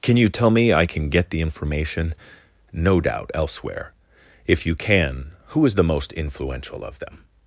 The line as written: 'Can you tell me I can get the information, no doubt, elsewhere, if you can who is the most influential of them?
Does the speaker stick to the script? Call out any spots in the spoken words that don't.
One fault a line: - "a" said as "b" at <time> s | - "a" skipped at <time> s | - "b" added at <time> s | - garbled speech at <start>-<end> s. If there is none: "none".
none